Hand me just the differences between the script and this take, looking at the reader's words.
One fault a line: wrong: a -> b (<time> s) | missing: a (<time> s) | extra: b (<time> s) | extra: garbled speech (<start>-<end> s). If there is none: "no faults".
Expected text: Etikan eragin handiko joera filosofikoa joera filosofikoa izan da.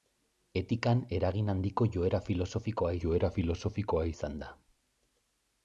no faults